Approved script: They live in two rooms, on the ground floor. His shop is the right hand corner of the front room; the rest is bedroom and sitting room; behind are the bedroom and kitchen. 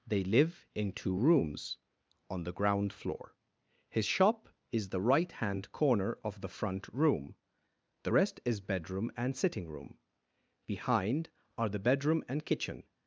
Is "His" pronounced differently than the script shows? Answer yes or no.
no